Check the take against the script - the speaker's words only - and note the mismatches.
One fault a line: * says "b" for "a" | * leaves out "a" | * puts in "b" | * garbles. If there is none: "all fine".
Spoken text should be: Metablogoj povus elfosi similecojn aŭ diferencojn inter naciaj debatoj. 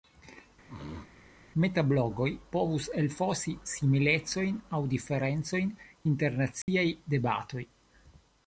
all fine